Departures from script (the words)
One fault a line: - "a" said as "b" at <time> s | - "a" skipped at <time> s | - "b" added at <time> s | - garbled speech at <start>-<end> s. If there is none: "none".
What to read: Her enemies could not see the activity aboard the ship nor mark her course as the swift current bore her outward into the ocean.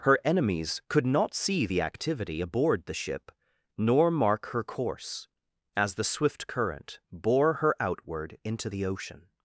none